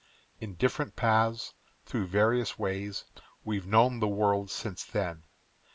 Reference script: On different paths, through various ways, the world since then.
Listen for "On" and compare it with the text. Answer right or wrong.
wrong